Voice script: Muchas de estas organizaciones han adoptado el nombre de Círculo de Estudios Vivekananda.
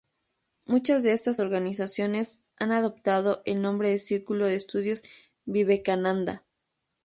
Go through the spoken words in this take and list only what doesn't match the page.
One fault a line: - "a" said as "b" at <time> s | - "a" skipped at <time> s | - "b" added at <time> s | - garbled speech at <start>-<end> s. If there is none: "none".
none